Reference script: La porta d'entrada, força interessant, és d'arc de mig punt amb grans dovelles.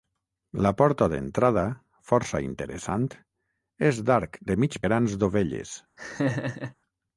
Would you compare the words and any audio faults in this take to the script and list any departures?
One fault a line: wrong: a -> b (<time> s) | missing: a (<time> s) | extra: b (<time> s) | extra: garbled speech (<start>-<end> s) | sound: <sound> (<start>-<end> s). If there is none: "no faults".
missing: punt amb (4.8 s)
sound: laugh (6.0-6.7 s)